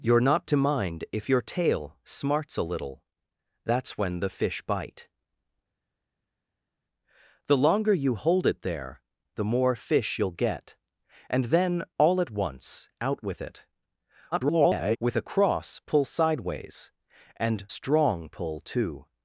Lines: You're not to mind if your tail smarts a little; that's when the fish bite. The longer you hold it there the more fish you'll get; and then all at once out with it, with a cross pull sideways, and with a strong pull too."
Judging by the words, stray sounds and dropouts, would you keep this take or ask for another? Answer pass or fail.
fail